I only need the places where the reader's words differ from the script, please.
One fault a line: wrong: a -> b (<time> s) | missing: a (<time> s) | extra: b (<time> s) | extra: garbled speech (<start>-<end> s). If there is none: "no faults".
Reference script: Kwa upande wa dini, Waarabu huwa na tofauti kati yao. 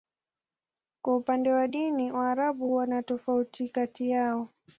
no faults